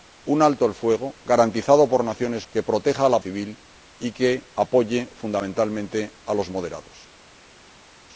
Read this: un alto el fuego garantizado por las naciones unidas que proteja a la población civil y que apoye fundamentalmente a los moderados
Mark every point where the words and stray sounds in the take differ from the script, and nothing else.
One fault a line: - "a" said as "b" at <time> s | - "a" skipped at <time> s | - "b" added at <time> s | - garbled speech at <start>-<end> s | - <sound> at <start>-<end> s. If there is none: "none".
- "unidas" skipped at 2.5 s
- "población" skipped at 3.2 s